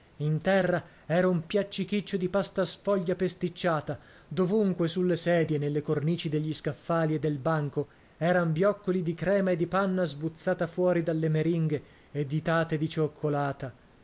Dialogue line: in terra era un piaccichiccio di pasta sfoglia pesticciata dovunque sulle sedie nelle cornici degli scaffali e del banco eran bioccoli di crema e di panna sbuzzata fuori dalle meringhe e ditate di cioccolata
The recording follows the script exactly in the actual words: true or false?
true